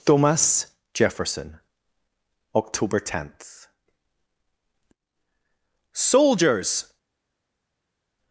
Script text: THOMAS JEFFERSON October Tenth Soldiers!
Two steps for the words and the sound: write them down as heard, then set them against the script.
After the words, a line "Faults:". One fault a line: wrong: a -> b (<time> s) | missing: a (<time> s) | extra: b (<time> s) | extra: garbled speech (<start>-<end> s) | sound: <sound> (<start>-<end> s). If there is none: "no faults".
THOMAS JEFFERSON October Tenth Soldiers!
Faults:
no faults